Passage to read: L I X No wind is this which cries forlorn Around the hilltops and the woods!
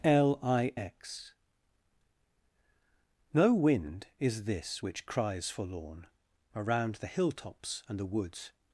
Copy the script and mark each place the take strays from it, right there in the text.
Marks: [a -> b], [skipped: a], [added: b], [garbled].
L I X No wind is this which cries forlorn Around the hilltops and the woods!